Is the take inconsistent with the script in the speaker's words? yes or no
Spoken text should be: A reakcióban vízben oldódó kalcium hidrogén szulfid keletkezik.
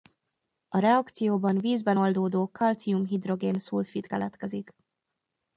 no